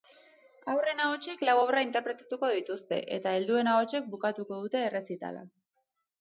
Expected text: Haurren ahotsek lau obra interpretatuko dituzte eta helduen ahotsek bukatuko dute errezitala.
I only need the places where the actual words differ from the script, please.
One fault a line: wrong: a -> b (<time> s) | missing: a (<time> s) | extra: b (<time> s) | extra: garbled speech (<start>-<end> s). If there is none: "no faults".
no faults